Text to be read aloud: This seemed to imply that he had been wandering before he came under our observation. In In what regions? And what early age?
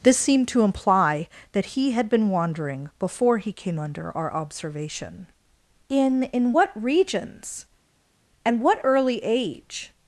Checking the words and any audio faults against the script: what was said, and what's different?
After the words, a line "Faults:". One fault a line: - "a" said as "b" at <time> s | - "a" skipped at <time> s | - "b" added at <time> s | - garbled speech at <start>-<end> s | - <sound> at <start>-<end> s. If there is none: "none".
This seemed to imply that he had been wandering before he came under our observation. In In what regions? And what early age?
Faults:
none